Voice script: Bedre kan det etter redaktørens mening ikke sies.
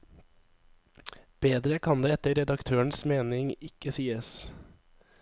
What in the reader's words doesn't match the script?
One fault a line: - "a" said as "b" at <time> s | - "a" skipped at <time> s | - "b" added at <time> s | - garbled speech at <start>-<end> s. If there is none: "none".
none